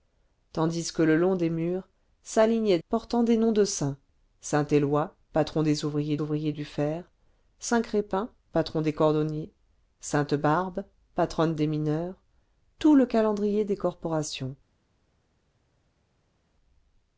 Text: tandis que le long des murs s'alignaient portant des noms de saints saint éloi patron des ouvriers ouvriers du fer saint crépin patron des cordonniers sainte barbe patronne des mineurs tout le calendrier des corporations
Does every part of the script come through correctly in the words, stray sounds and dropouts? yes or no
yes